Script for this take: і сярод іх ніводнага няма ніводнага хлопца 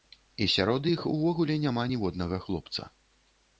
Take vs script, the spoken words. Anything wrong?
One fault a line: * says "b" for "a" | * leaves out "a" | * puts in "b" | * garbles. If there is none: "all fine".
* says "увогуле" for "ніводнага"